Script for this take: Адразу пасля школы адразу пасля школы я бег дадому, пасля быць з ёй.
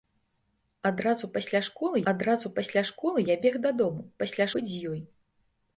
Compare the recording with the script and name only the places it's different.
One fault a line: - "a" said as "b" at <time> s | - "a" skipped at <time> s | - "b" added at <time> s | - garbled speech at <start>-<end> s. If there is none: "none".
none